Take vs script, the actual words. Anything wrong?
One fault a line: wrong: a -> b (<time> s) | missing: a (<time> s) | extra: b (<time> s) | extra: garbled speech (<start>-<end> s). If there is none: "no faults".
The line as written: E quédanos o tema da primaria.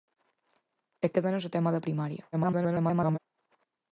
extra: garbled speech (2.3-3.2 s)